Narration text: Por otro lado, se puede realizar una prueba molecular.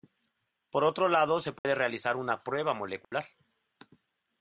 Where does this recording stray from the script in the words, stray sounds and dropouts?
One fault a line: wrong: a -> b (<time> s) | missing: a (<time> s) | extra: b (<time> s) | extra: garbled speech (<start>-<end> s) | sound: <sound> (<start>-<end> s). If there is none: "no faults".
sound: dropout (1.6-1.6 s)
sound: dropout (3.0-3.1 s)